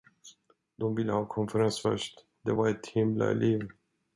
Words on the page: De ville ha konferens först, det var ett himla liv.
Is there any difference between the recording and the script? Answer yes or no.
no